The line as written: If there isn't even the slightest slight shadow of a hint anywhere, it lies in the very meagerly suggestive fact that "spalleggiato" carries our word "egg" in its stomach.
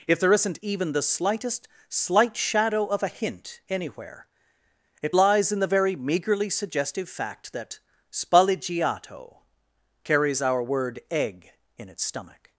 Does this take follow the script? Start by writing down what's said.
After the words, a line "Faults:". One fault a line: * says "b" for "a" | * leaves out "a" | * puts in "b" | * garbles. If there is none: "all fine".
If there isn't even the slightest slight shadow of a hint anywhere, it lies in the very meagerly suggestive fact that "spalleggiato" carries our word "egg" in its stomach.
Faults:
all fine